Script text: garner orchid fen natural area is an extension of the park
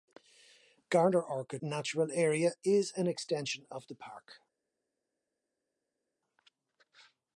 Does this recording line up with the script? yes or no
no